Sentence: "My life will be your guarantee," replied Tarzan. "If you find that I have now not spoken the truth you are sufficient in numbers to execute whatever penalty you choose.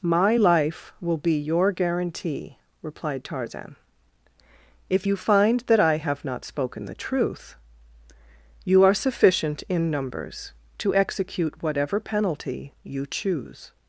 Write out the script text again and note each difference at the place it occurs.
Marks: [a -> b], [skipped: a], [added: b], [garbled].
"My life will be your guarantee," replied Tarzan. "If you find that I have [skipped: now] not spoken the truth you are sufficient in numbers to execute whatever penalty you choose.